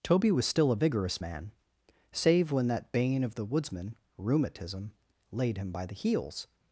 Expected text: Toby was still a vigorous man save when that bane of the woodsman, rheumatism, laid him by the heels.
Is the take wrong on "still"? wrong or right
right